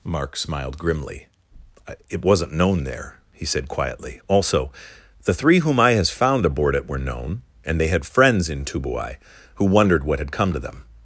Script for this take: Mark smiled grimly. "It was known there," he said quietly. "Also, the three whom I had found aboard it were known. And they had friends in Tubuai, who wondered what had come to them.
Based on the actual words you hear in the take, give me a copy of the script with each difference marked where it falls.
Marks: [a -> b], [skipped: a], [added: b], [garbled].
Mark smiled grimly. "It [was -> wasn't] known there," he said quietly. "Also, the three whom I [had -> has] found aboard it were known. And they had friends in Tubuai, who wondered what had come to them.